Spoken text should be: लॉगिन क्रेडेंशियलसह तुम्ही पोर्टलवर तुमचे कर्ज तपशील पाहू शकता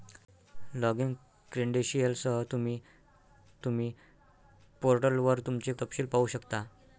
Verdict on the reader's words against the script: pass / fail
fail